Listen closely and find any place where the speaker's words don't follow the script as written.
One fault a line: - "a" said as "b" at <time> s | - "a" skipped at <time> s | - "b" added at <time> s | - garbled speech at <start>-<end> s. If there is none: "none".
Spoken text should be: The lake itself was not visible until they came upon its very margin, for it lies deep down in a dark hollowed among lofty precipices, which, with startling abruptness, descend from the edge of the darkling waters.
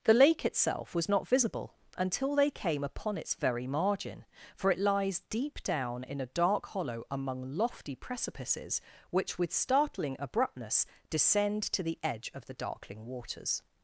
- "hollowed" said as "hollow" at 6.7 s
- "from" said as "to" at 11.6 s